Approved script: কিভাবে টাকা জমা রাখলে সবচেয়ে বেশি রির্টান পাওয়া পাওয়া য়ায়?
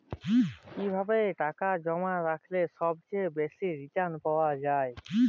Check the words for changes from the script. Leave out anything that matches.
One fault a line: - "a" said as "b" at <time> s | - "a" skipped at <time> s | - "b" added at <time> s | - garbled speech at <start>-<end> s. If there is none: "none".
- "পাওয়া" skipped at 4.5 s